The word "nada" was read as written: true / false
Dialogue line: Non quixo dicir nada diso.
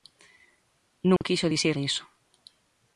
false